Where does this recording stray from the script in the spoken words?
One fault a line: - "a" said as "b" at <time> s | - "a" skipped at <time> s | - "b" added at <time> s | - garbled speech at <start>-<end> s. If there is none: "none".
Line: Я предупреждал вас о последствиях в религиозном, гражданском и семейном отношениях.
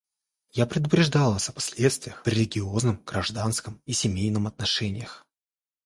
none